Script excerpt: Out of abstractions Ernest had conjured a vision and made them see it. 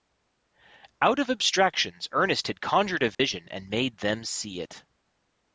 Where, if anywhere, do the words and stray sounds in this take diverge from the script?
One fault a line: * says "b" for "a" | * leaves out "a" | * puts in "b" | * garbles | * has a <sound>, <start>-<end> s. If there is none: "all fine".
* has a dropout, 3.1-3.2 s